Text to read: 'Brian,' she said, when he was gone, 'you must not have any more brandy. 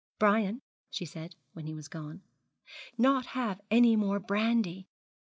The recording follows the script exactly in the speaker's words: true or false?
false